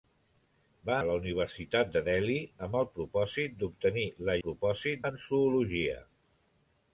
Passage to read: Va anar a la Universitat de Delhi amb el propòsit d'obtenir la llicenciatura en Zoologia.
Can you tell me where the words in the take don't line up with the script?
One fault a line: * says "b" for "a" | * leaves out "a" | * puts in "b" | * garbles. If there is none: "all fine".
* leaves out "anar"
* says "propòsit" for "llicenciatura"